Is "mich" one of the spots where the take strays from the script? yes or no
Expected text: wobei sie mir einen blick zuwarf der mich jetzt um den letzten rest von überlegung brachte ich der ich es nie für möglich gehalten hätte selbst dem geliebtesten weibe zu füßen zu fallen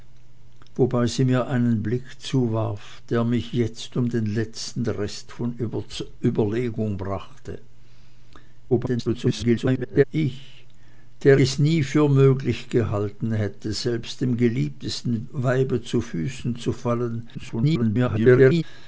no